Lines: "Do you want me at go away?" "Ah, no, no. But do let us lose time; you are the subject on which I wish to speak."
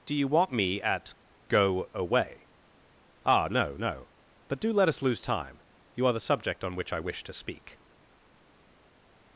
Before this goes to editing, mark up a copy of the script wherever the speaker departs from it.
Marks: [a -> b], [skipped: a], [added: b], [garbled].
"Do you want me at go away?" "Ah, no, no. But do let us lose time; you are the subject on which I wish to speak."